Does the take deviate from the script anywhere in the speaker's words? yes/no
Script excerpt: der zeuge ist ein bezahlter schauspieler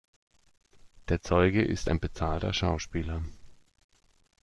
no